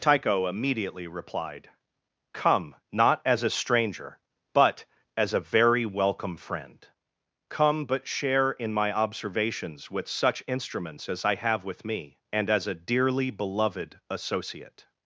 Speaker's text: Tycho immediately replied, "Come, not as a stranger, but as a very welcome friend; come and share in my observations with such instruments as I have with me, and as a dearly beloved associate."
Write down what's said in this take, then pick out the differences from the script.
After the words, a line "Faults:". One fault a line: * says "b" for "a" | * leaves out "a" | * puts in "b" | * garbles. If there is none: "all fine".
Tycho immediately replied, "Come, not as a stranger, but as a very welcome friend; come but share in my observations with such instruments as I have with me, and as a dearly beloved associate."
Faults:
* says "but" for "and"